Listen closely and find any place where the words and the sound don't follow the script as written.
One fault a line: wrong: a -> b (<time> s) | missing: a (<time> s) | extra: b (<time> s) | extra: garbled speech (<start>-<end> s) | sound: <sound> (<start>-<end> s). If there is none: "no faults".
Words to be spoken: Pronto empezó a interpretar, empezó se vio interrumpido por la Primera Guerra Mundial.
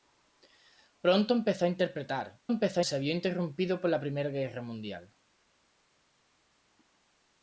no faults